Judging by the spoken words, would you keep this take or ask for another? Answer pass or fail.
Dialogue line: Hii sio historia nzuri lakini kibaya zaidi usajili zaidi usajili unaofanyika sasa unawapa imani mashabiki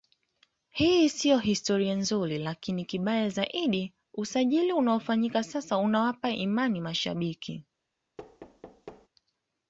fail